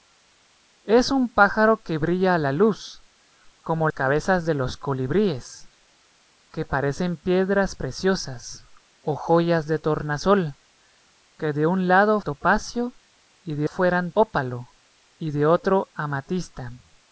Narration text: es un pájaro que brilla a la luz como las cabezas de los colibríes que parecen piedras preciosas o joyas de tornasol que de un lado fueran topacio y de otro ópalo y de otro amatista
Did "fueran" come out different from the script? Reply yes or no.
yes